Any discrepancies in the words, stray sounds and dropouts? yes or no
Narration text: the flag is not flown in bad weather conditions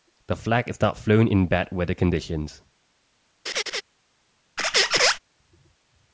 yes